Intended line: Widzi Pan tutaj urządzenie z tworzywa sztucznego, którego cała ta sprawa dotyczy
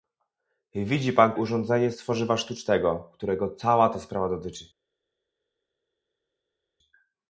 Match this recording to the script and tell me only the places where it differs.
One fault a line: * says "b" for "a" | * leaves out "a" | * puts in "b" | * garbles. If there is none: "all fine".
* leaves out "tutaj"